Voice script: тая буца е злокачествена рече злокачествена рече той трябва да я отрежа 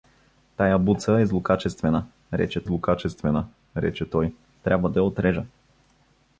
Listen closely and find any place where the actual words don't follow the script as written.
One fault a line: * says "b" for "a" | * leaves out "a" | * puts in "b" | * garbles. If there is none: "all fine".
all fine